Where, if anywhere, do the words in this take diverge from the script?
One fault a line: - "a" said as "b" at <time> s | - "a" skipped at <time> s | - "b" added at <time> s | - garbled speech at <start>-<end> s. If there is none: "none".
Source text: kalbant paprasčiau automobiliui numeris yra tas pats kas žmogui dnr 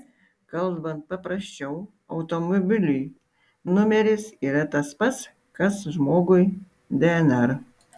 none